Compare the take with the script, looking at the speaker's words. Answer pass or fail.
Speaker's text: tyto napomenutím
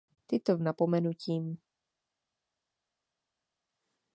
pass